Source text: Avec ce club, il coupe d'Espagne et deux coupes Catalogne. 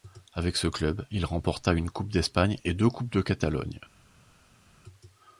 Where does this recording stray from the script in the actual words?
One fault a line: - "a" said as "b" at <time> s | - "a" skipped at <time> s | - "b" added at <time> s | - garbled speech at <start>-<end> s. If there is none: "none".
- "remporta une" added at 1.2 s
- "de" added at 3.1 s